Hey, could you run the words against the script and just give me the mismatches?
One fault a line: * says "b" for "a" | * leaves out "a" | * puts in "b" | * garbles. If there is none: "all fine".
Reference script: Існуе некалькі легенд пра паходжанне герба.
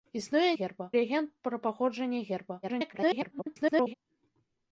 * says "герба" for "некалькі"
* garbles